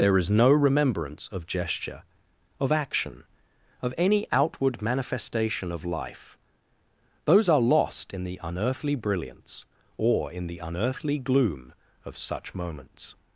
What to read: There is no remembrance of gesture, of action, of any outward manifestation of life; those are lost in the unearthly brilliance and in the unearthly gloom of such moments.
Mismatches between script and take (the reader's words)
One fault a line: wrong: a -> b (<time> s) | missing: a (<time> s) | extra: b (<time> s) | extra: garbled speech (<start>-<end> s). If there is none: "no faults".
wrong: and -> or (10.0 s)